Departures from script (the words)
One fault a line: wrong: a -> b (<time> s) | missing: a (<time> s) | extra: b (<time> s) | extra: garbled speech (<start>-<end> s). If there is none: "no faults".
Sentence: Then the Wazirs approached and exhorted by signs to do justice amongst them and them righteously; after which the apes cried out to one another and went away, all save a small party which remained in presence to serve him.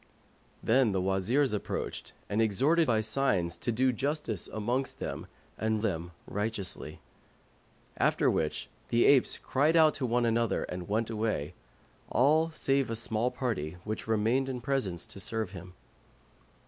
no faults